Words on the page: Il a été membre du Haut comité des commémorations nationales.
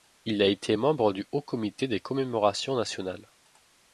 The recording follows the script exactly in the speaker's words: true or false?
true